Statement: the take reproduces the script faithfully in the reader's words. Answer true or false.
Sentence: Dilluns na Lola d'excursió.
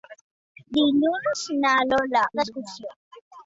true